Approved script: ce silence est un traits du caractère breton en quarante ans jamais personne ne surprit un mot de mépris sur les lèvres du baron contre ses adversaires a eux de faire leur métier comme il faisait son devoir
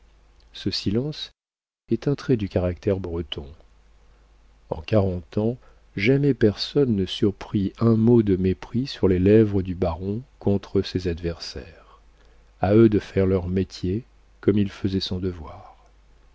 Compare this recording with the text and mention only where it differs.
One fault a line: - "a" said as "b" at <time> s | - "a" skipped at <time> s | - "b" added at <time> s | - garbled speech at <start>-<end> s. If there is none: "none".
none